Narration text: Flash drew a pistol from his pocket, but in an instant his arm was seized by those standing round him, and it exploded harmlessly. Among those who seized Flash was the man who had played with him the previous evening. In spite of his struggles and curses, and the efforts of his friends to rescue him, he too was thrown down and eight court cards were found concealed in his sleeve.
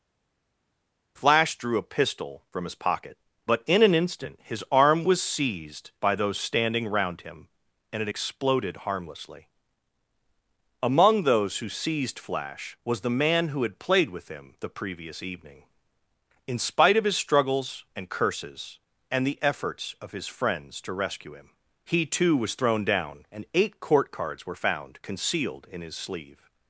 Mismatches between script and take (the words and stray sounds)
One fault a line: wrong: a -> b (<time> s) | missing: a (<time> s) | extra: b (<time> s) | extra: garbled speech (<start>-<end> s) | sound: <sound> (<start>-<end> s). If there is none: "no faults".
no faults